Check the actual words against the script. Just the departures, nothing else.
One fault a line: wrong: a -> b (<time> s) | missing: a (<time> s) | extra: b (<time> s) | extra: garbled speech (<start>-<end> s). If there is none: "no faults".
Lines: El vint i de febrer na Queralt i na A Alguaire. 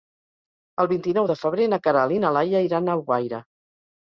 extra: nou (1.2 s)
extra: Laia iran (2.4 s)